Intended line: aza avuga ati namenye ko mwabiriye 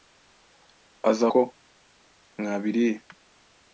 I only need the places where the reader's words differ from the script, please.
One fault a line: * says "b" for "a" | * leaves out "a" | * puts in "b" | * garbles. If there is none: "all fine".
* leaves out "avuga ati namenye"